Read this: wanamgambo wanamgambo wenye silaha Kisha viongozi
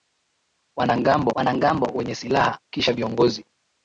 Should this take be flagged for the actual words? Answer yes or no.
no